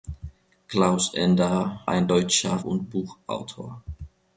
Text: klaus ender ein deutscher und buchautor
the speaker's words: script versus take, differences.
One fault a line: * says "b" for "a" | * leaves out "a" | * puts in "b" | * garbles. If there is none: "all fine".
all fine